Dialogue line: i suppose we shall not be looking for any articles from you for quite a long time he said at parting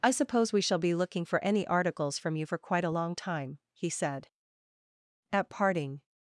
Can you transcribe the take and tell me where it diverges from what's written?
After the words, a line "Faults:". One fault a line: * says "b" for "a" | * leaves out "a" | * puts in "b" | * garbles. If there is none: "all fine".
i suppose we shall be looking for any articles from you for quite a long time he said at parting
Faults:
* leaves out "not"